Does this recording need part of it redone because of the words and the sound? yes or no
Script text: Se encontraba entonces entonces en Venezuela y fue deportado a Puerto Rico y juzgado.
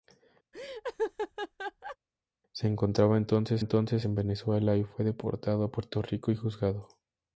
yes